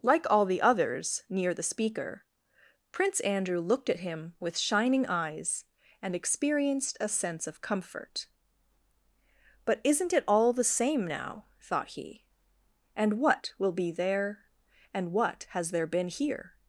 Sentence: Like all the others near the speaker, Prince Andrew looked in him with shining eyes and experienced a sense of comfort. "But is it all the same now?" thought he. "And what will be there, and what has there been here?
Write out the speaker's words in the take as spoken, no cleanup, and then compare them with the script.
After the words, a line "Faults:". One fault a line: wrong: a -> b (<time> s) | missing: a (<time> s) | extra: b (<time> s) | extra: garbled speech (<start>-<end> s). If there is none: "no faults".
Like all the others near the speaker, Prince Andrew looked at him with shining eyes and experienced a sense of comfort. "But isn't it all the same now?" thought he. "And what will be there, and what has there been here?
Faults:
wrong: in -> at (3.9 s)
wrong: is -> isn't (9.8 s)